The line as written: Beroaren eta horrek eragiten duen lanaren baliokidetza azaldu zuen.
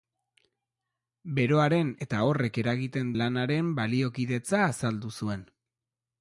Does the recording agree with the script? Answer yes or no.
no